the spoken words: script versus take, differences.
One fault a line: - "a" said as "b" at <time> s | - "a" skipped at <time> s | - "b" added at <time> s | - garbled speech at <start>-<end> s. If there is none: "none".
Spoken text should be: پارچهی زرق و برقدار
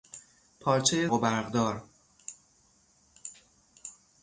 - "زرق" skipped at 1.1 s